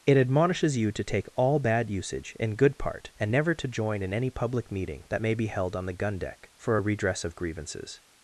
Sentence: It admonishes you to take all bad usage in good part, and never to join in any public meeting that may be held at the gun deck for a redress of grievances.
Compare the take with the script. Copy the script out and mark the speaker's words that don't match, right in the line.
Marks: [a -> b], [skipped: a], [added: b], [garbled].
It admonishes you to take all bad usage in good part, and never to join in any public meeting that may be held [at -> on] the gun deck for a redress of grievances.